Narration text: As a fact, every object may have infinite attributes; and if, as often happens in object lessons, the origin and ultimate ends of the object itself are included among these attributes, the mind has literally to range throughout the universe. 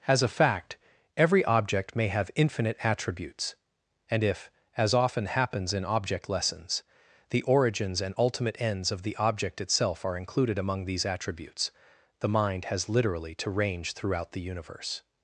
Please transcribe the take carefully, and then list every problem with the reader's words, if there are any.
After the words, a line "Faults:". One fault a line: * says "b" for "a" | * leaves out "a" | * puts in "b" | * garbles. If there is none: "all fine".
As a fact, every object may have infinite attributes; and if, as often happens in object lessons, the origins and ultimate ends of the object itself are included among these attributes, the mind has literally to range throughout the universe.
Faults:
* says "origins" for "origin"